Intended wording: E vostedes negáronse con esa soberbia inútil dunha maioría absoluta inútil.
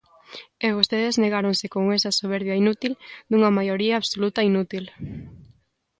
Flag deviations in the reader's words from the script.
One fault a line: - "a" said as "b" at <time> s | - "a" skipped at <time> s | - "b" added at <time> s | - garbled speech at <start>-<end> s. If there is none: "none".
none